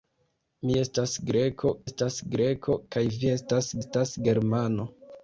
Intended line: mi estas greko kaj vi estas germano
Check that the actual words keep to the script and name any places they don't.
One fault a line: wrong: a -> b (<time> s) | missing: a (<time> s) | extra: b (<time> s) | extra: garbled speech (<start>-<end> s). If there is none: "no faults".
extra: estas greko (1.9 s)
extra: estas (3.8 s)